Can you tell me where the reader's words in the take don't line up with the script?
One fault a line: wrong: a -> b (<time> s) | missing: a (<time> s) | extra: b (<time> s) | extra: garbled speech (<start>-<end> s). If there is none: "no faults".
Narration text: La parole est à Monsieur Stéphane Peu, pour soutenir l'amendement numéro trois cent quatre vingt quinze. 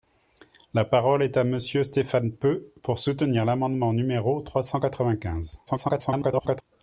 extra: garbled speech (5.7-6.6 s)